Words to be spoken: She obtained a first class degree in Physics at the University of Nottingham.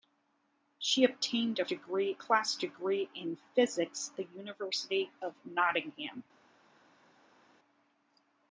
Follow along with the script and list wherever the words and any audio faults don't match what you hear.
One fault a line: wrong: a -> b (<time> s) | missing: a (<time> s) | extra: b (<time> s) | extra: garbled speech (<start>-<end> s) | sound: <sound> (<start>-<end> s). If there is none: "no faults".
wrong: first -> degree (1.6 s)
missing: at (4.1 s)